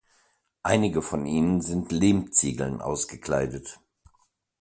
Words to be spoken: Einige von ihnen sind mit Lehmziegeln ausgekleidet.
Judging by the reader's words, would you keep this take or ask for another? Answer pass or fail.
fail